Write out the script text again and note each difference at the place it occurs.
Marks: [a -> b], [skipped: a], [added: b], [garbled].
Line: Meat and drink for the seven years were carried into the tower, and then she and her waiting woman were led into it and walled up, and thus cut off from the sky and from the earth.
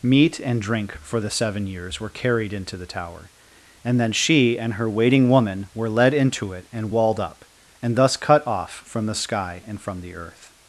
Meat and drink for the seven years were carried into the tower, and then she and her waiting woman were led into it and walled up, and thus cut off from the sky and from the earth.